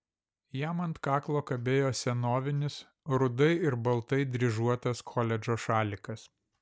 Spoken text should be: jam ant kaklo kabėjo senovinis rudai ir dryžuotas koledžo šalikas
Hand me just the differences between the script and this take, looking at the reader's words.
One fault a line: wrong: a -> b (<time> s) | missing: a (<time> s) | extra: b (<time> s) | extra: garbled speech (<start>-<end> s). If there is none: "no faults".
extra: baltai (3.9 s)